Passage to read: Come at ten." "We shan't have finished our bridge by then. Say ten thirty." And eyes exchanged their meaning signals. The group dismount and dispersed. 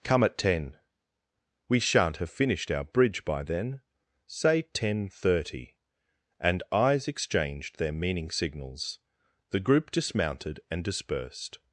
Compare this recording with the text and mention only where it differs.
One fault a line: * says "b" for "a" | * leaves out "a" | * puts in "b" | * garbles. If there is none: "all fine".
* says "dismounted" for "dismount"